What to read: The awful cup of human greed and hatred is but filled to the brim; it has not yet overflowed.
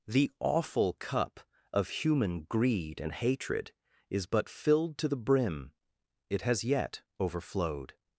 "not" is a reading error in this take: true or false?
true